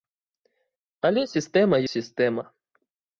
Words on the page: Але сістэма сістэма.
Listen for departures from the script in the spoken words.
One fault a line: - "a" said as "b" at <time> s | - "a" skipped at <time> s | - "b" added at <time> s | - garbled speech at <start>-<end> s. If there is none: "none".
none